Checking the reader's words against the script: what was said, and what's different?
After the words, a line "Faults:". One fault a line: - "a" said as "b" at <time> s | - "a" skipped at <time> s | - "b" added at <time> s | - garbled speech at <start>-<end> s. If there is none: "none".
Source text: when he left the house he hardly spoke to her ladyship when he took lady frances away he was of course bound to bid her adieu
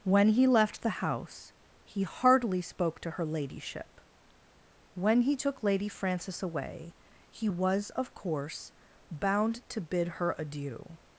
when he left the house he hardly spoke to her ladyship when he took lady frances away he was of course bound to bid her adieu
Faults:
none